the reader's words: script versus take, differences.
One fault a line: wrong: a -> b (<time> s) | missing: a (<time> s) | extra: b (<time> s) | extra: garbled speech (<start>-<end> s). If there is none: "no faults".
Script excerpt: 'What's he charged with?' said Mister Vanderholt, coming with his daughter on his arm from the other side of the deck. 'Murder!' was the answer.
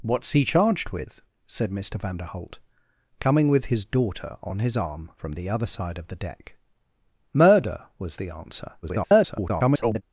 extra: garbled speech (8.8-10.0 s)